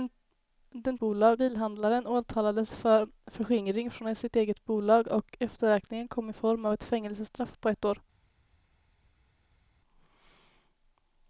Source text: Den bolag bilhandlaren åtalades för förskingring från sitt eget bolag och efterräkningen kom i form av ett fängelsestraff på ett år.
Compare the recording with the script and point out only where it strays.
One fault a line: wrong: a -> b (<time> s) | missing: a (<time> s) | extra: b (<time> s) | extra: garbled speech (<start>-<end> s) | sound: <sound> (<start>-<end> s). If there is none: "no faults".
no faults